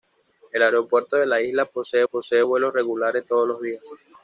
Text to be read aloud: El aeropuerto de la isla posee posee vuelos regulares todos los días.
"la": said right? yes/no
yes